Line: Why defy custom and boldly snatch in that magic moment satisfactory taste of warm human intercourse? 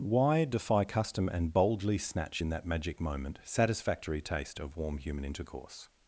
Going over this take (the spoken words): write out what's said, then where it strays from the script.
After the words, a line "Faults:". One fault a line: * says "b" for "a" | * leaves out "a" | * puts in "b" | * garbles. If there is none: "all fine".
Why defy custom and boldly snatch in that magic moment satisfactory taste of warm human intercourse?
Faults:
all fine